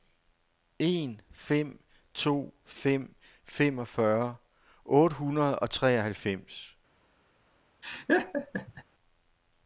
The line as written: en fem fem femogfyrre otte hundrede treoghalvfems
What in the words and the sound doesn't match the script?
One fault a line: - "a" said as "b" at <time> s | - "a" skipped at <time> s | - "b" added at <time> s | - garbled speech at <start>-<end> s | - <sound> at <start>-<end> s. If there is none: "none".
- "to" added at 2.1 s
- "og" added at 5.6 s
- laugh at 7.8-8.8 s